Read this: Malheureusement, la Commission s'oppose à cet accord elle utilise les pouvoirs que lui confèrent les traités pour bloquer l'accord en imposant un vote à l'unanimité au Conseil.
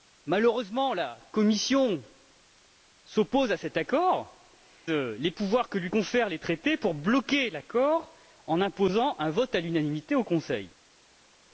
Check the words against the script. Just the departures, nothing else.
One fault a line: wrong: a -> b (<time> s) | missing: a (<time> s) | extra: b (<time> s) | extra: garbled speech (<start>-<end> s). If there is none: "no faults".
missing: elle utilise (4.4 s)